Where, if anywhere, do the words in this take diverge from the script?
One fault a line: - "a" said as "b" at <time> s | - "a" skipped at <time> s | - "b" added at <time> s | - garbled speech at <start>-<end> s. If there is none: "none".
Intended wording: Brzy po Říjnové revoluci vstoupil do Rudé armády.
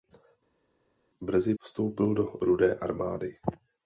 - "po Říjnové revoluci" skipped at 1.5 s